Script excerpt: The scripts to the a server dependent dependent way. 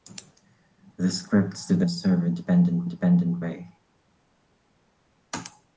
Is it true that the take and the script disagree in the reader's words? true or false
false